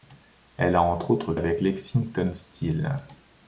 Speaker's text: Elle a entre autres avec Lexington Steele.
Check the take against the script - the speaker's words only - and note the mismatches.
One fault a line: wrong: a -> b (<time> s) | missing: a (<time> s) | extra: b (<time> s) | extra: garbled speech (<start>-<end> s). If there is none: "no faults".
no faults